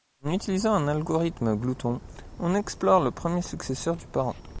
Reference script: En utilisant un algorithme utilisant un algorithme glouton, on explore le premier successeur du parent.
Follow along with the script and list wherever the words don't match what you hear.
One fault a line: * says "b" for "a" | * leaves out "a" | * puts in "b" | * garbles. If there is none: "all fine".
* leaves out "utilisant un algorithme"